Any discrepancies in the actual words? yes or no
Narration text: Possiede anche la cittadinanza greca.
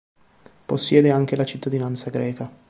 no